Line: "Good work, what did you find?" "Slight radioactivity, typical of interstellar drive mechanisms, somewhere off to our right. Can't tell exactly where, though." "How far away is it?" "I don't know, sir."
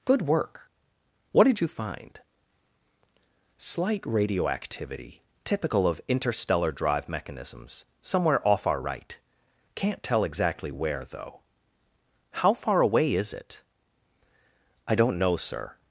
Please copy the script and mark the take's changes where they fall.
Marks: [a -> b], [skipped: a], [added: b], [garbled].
"Good work, what did you find?" "Slight radioactivity, typical of interstellar drive mechanisms, somewhere off [skipped: to] our right. Can't tell exactly where, though." "How far away is it?" "I don't know, sir."